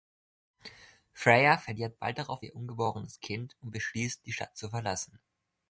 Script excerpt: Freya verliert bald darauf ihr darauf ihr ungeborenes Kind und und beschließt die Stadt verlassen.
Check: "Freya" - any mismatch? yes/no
no